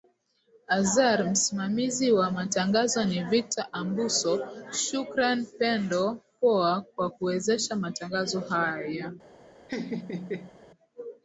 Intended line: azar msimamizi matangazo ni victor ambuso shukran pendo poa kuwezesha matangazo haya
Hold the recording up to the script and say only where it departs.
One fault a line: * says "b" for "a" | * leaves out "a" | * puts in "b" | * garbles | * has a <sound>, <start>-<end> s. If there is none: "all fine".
* puts in "wa"
* puts in "kwa"
* has a laugh, 9.7-10.6 s